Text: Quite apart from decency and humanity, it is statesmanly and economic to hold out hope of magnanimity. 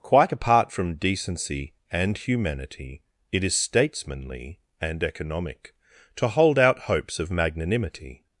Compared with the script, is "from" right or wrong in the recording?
right